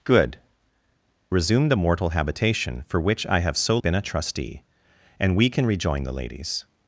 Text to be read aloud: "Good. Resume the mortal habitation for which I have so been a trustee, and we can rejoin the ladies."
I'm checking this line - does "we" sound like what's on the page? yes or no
yes